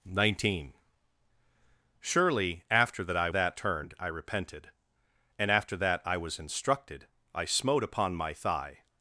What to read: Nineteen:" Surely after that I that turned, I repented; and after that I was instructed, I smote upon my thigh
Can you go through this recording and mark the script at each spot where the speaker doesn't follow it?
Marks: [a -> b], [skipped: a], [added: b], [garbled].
Nineteen:" Surely after that I that turned, I repented; and after that I was instructed, I smote upon my thigh